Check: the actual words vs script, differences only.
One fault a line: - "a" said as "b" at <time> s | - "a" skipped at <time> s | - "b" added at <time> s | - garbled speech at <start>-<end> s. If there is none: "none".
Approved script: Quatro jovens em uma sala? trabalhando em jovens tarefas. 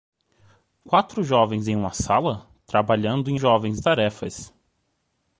none